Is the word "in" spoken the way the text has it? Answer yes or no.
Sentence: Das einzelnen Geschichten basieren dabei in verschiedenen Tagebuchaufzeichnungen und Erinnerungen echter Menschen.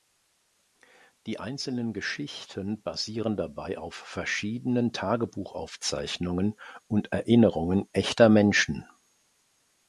no